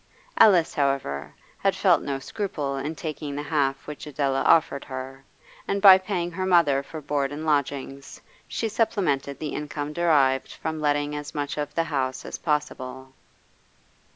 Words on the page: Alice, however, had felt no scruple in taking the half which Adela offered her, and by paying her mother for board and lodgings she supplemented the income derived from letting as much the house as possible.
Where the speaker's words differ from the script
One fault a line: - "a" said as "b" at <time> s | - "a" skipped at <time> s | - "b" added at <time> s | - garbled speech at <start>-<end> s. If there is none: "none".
- "of" added at 11.6 s